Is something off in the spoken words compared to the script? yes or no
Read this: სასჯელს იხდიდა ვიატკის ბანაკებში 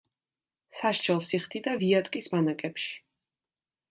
no